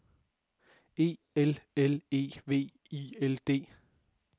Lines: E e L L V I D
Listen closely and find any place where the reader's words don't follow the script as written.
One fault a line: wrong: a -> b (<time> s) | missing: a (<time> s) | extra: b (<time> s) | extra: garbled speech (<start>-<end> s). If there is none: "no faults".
wrong: e -> L (1.4 s)
wrong: L -> E (2.1 s)
extra: L (3.2 s)